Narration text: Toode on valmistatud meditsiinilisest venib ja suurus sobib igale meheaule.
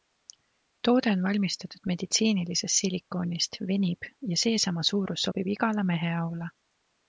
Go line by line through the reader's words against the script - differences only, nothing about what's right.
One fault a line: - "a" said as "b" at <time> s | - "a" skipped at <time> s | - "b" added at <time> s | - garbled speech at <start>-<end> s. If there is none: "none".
- "silikoonist" added at 2.8 s
- "seesama" added at 4.5 s